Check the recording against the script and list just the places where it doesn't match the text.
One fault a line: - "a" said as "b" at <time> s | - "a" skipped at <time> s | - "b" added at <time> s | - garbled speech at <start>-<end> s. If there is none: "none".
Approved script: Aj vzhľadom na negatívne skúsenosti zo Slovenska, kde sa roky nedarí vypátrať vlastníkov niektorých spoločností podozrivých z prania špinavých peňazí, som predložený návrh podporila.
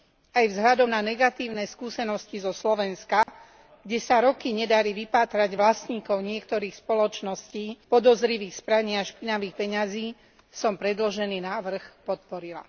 none